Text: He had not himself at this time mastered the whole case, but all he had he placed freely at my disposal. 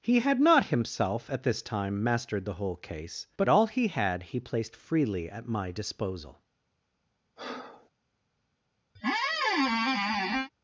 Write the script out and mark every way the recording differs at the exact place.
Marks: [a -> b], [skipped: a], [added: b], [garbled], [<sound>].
He had not himself at this time mastered the whole case, but all he had he placed freely at my disposal. [breath] [squeak]